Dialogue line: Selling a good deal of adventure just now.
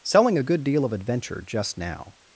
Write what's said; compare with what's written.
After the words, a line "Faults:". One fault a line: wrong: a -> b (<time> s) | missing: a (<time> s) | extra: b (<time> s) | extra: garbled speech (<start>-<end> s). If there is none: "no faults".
Selling a good deal of adventure just now.
Faults:
no faults